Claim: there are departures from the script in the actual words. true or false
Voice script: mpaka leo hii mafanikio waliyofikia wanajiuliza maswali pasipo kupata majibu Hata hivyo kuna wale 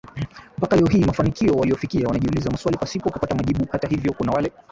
false